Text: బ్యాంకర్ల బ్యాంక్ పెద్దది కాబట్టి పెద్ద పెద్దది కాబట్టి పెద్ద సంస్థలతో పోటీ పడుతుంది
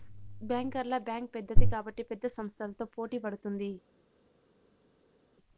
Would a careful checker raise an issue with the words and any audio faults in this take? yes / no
yes